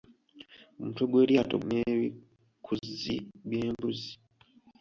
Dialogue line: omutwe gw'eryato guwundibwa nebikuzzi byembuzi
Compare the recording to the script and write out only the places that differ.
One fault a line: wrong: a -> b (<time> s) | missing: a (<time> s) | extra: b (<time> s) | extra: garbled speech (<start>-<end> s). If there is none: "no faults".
missing: guwundibwa (1.6 s)